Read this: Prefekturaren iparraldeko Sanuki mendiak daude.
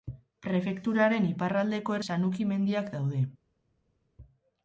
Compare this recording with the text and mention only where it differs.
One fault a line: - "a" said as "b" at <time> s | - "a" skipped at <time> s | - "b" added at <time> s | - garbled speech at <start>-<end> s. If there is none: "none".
none